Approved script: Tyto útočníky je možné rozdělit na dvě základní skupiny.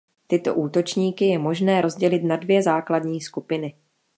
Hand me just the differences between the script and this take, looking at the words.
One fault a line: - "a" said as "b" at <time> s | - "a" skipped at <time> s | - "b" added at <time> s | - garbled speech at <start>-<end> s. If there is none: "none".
none